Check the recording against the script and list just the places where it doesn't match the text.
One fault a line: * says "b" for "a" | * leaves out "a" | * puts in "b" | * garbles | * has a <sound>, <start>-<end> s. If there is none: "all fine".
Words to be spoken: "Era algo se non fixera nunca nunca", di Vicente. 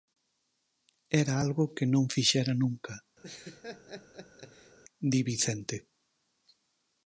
* says "que" for "se"
* leaves out "nunca"
* has a laugh, 3.2-4.8 s